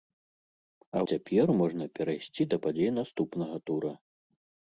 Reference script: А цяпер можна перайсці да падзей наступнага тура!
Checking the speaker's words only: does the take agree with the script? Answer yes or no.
yes